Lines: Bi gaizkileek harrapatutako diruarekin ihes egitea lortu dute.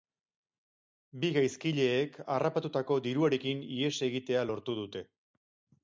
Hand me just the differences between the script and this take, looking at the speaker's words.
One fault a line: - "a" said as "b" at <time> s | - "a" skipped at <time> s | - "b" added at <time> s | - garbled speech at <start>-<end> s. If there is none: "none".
none